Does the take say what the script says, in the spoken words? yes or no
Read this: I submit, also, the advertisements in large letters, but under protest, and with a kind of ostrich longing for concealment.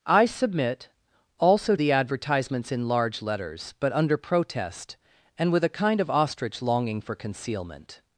yes